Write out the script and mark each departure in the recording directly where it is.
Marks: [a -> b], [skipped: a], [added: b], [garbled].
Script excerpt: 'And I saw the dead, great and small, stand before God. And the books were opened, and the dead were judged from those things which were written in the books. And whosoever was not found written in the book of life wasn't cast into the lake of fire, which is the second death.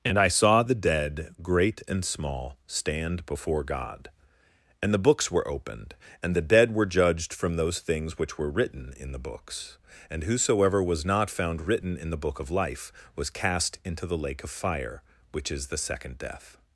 'And I saw the dead, great and small, stand before God. And the books were opened, and the dead were judged from those things which were written in the books. And whosoever was not found written in the book of life [wasn't -> was] cast into the lake of fire, which is the second death.